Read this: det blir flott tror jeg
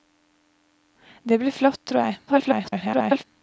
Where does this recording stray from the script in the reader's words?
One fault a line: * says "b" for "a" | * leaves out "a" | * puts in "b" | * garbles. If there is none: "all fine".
* garbles